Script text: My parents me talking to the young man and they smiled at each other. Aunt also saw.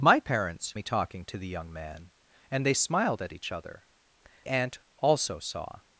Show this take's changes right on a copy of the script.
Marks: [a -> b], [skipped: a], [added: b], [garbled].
My parents me talking to the young man and they smiled at each other. Aunt also saw.